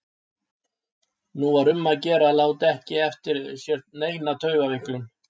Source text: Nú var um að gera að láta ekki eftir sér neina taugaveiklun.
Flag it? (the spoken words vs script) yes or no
no